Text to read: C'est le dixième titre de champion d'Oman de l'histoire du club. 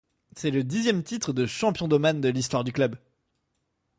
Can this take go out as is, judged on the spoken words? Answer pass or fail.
pass